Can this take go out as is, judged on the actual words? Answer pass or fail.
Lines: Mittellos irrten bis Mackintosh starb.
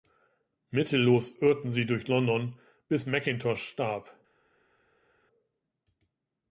fail